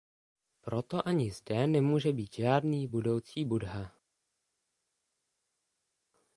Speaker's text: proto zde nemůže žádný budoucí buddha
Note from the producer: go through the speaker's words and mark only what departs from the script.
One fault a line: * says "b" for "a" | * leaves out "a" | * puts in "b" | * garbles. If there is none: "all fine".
* puts in "ani"
* puts in "být"